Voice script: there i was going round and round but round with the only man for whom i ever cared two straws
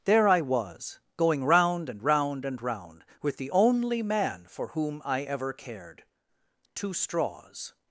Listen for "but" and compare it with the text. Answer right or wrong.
wrong